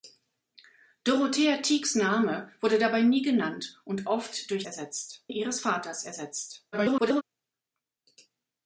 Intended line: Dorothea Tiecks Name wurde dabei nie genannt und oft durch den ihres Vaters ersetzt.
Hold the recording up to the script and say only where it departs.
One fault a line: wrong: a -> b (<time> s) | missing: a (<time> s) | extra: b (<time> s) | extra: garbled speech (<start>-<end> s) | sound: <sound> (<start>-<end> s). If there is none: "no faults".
wrong: den -> ersetzt (4.6 s)
extra: garbled speech (6.7-7.2 s)